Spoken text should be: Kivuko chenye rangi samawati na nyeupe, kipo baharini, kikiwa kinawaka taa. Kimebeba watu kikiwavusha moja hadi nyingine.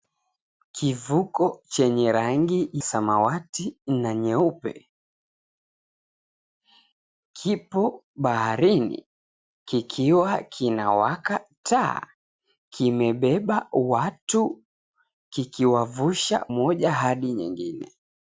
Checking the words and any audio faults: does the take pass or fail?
pass